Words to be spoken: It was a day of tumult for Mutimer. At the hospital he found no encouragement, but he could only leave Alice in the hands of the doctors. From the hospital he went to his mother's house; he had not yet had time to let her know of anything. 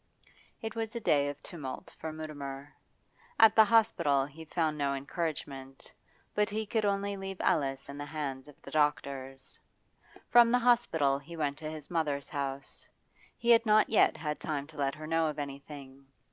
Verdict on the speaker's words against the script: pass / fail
pass